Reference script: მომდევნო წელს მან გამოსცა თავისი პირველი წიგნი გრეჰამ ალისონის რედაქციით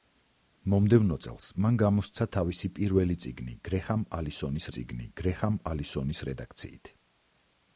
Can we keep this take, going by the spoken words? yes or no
no